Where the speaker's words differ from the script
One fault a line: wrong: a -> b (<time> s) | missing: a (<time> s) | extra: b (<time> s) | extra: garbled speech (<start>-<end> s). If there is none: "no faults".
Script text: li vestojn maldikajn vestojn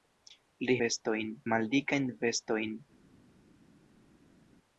no faults